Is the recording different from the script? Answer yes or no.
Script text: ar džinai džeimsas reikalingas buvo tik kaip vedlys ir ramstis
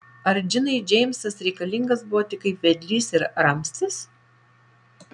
no